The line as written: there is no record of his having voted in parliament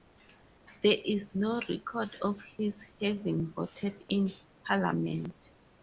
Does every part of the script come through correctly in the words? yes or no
yes